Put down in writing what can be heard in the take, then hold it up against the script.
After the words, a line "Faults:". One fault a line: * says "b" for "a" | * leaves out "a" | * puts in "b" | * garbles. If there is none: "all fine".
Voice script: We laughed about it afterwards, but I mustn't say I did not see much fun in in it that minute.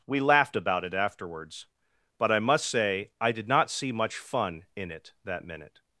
We laughed about it afterwards, but I must say I did not see much fun in it that minute.
Faults:
* says "must" for "mustn't"
* leaves out "in"